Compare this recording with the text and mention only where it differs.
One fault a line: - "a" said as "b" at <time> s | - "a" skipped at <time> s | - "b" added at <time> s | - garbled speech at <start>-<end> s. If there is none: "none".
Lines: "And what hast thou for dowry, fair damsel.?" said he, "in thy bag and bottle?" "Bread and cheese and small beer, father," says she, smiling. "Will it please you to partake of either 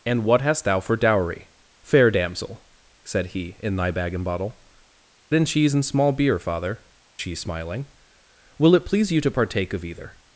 - "Bread" skipped at 4.6 s
- "says" skipped at 6.8 s